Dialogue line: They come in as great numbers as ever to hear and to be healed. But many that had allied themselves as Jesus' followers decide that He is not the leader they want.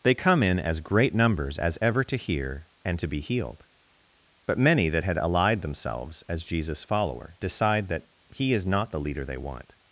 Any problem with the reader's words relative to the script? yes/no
yes